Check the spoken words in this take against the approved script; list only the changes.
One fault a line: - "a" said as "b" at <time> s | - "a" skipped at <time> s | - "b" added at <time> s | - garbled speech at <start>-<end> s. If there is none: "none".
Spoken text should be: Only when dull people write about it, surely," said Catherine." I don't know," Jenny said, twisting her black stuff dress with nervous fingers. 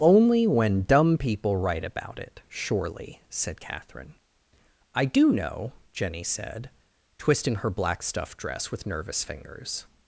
- "dull" said as "dumb" at 0.8 s
- "don't" said as "do" at 5.0 s